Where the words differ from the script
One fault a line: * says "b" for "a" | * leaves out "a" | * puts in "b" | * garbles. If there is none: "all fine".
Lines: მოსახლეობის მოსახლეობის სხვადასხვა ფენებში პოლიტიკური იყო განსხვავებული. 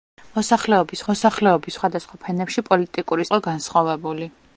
all fine